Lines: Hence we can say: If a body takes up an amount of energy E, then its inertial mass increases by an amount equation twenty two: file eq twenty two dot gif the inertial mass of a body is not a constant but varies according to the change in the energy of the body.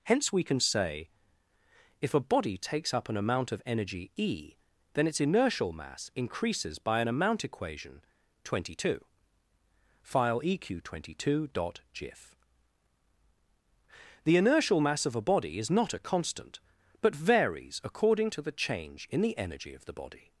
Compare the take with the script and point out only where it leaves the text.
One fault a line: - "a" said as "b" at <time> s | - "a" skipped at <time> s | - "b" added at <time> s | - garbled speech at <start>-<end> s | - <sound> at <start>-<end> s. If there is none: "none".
none